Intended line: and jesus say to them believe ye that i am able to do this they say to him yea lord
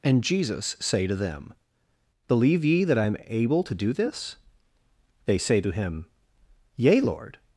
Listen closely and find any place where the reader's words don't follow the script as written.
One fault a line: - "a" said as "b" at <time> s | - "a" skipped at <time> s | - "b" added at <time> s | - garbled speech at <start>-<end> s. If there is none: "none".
none